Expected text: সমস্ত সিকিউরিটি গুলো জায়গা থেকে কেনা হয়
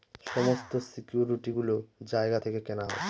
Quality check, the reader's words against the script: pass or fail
pass